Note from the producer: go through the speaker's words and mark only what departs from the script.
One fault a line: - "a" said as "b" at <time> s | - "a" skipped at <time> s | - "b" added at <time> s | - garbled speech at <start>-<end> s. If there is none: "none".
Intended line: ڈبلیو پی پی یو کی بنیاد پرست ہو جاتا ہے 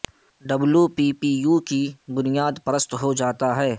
none